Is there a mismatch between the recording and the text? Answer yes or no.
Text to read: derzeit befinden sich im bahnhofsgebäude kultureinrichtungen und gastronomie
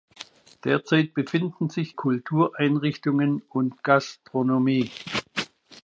yes